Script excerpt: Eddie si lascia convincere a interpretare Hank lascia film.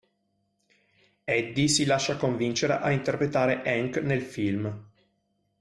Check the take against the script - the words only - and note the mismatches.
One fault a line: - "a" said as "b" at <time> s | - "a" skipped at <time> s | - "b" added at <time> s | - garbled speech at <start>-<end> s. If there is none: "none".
- "lascia" said as "nel" at 4.0 s